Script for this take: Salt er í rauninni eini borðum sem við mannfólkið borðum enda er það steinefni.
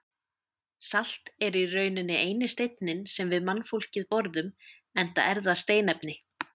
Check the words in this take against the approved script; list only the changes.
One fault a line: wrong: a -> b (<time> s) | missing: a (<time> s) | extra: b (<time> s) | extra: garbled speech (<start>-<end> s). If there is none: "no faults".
wrong: borðum -> steinninn (2.5 s)